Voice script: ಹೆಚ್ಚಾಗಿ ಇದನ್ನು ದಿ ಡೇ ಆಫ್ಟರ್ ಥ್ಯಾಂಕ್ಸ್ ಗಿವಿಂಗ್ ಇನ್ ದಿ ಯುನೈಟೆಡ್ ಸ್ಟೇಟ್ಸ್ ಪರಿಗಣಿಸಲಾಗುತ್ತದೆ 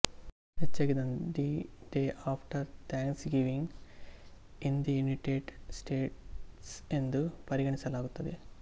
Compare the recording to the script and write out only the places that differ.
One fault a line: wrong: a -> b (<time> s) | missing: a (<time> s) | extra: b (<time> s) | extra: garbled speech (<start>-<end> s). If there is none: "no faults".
extra: ಎಂದು (6.9 s)